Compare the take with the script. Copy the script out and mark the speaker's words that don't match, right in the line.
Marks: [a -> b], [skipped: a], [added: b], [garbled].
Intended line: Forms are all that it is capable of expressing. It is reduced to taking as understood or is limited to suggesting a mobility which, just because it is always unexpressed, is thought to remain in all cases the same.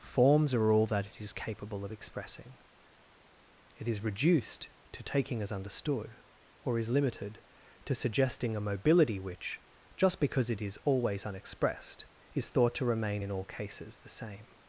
Forms are all that it is capable of expressing. It is reduced to taking as understood or is limited to suggesting a mobility which, just because it is always unexpressed, is thought to remain in all cases the same.